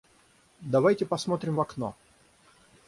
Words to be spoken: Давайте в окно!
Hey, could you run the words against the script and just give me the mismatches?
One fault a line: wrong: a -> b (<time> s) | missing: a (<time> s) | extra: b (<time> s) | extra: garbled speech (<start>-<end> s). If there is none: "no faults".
extra: посмотрим (1.1 s)